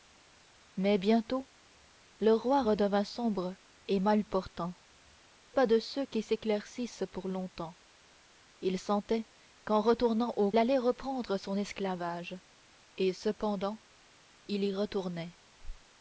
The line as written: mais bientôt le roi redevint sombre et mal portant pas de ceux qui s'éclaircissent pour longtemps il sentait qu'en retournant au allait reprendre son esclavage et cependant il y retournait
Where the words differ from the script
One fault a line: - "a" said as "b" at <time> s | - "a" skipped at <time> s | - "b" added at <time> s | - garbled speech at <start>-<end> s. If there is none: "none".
none